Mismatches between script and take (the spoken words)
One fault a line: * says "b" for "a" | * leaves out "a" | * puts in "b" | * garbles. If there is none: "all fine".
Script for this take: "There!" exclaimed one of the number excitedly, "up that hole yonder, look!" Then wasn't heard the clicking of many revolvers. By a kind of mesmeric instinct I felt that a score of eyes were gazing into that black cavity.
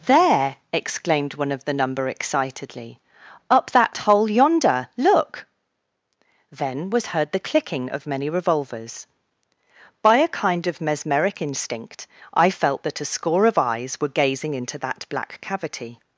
* says "was" for "wasn't"